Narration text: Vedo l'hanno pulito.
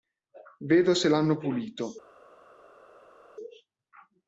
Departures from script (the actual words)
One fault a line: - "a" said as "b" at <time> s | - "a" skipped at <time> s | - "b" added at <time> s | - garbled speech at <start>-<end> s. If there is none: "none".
- "se" added at 0.9 s